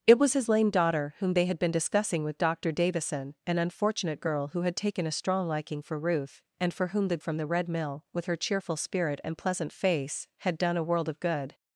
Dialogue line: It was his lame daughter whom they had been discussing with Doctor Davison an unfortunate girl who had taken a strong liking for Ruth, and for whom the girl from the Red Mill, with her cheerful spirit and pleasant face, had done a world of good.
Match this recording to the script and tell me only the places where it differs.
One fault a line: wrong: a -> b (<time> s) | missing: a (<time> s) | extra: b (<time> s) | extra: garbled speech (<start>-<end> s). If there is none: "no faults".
missing: girl (7.2 s)